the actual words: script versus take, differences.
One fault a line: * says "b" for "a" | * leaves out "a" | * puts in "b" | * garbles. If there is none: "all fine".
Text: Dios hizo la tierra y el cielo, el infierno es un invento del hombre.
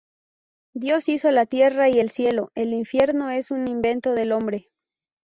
all fine